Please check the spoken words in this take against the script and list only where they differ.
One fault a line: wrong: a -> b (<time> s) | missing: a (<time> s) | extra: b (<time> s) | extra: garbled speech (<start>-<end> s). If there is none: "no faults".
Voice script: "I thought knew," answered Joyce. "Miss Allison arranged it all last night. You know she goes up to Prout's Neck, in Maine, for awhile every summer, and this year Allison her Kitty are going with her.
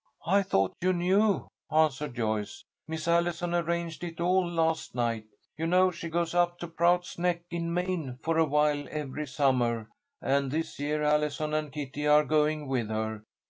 extra: you (0.8 s)
wrong: her -> and (11.5 s)